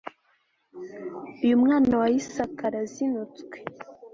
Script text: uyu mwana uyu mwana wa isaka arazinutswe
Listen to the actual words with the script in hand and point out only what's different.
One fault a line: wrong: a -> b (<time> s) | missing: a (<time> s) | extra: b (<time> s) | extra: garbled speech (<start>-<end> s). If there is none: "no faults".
missing: uyu mwana (1.9 s)